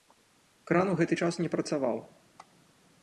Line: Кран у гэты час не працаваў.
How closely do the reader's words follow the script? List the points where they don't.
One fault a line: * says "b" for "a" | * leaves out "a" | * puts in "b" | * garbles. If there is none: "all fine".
all fine